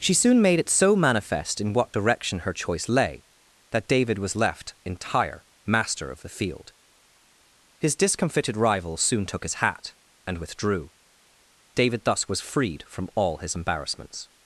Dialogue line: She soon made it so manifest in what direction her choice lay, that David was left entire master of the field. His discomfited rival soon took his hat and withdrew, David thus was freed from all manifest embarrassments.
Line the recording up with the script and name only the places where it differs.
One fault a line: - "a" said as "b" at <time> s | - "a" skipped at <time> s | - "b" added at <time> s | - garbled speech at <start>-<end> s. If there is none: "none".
- "manifest" said as "his" at 13.4 s